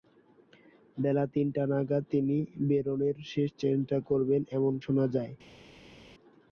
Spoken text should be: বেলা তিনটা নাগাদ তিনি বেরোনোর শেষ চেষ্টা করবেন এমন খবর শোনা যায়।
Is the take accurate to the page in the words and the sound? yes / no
no